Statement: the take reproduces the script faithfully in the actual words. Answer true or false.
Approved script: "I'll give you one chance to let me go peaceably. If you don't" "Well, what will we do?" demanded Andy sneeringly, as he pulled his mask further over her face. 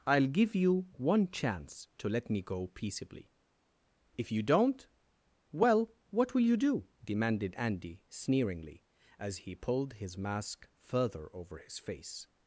false